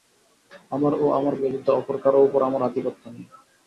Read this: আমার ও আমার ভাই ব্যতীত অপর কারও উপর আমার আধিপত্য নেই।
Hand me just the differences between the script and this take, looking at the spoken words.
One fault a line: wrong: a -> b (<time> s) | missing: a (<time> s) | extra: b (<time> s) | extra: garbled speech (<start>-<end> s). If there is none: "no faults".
missing: ভাই (1.3 s)